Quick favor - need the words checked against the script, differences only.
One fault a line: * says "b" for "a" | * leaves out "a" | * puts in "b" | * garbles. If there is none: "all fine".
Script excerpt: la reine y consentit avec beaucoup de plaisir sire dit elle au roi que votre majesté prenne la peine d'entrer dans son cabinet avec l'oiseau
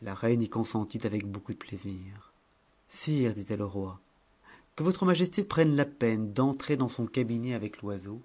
all fine